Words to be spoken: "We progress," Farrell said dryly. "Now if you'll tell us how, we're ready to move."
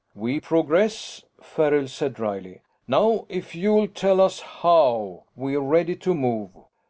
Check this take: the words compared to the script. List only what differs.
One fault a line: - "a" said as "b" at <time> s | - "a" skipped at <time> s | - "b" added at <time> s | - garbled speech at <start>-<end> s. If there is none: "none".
none